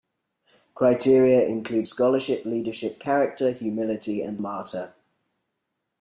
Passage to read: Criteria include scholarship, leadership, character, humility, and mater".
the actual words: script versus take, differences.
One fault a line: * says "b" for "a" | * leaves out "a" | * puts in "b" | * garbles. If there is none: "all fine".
all fine